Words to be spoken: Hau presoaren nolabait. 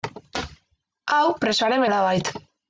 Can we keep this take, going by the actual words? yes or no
yes